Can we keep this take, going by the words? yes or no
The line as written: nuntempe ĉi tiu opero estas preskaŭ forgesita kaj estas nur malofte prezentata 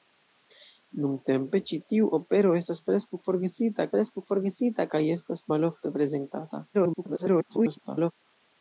no